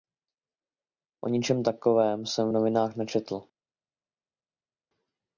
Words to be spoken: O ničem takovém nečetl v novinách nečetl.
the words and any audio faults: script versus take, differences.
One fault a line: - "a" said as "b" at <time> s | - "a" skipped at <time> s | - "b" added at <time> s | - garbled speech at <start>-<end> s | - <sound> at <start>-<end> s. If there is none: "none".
- "nečetl" said as "jsem" at 2.2 s